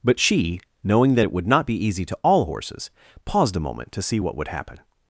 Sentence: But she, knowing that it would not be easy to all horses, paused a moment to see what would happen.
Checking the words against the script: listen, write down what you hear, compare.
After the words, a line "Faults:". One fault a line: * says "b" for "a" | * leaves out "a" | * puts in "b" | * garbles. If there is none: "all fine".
But she, knowing that it would not be easy to all horses, paused a moment to see what would happen.
Faults:
all fine